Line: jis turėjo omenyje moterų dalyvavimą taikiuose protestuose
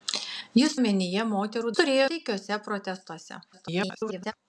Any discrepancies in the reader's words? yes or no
yes